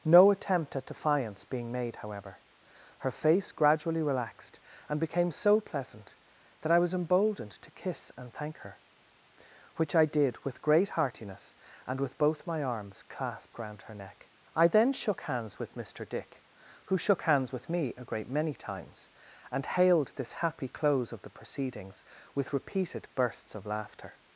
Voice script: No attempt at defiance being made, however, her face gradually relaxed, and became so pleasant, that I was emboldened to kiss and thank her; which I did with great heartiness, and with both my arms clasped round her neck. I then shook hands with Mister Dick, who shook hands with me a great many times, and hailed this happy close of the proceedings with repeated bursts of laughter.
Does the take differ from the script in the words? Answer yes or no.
no